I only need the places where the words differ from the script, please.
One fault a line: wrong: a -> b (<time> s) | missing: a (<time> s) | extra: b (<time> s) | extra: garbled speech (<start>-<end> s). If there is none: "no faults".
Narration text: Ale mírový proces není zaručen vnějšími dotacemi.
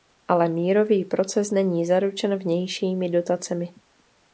no faults